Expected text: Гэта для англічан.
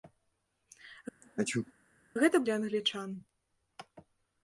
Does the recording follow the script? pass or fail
pass